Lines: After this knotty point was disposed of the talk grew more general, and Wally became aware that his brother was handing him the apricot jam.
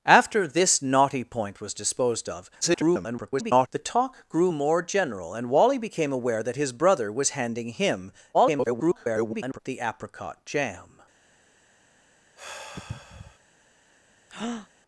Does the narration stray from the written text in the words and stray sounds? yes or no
yes